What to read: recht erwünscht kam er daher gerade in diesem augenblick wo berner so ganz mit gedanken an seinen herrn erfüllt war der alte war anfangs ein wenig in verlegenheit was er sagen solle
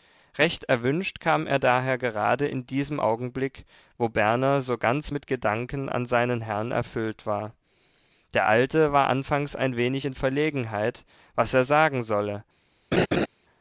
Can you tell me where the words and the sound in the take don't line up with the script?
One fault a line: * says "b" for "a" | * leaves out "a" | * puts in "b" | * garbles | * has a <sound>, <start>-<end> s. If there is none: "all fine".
* has a laugh, 12.9-13.3 s